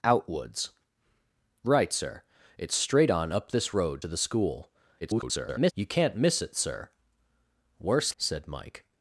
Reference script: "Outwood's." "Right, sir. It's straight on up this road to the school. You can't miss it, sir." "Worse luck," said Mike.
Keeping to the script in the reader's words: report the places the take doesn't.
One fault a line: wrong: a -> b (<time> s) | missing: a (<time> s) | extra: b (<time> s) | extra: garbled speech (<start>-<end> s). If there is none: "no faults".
extra: garbled speech (5.0-5.7 s)
missing: luck (8.1 s)